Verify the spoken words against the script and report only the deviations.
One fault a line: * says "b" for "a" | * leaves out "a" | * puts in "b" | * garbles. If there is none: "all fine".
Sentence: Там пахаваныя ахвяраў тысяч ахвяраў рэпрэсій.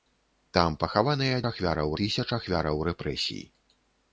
all fine